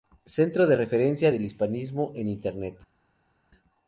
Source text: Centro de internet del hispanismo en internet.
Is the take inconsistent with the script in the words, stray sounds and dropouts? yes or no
yes